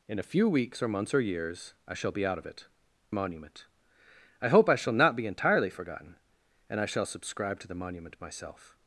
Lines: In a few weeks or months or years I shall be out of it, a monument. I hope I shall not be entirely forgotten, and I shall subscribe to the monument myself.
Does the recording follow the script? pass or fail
pass